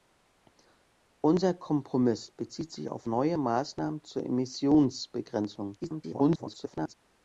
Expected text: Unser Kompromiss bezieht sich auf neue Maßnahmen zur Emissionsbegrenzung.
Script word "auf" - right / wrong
right